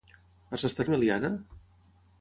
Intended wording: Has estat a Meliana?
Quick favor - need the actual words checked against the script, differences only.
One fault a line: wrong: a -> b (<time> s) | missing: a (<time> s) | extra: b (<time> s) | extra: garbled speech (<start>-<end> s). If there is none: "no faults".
no faults